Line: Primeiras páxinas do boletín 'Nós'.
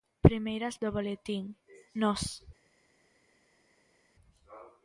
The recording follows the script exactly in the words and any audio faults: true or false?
false